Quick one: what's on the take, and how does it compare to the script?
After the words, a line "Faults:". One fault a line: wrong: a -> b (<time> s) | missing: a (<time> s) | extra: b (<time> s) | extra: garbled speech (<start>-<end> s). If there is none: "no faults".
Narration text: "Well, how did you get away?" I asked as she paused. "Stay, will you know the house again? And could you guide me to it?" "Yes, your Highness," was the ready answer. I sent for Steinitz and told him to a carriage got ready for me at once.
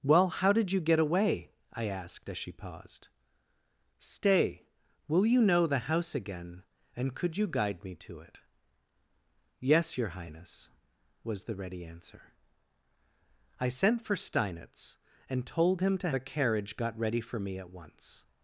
"Well, how did you get away?" I asked as she paused. "Stay, will you know the house again? And could you guide me to it?" "Yes, your Highness," was the ready answer. I sent for Steinitz and told him to a carriage got ready for me at once.
Faults:
no faults